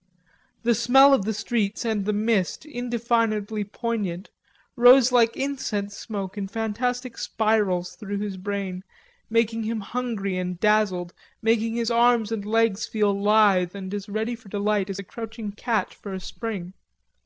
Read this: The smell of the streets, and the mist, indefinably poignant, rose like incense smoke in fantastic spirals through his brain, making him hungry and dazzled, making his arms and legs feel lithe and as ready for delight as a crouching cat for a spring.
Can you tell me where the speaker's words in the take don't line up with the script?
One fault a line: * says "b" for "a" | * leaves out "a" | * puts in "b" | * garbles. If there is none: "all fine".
all fine